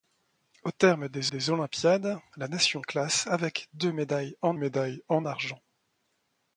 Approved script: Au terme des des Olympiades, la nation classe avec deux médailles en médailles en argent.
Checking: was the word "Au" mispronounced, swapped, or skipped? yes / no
no